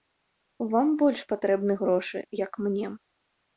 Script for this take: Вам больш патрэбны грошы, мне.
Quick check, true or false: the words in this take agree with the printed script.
false